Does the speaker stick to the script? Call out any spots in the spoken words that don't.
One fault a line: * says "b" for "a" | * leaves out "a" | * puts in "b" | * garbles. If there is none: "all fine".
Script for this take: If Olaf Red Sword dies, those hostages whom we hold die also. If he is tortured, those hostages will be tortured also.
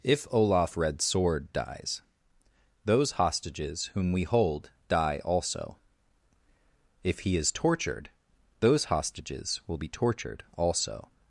all fine